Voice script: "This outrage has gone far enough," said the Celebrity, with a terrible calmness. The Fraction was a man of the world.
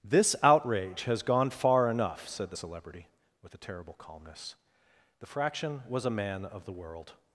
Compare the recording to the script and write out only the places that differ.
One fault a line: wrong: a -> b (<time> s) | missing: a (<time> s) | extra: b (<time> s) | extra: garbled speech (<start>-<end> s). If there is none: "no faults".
no faults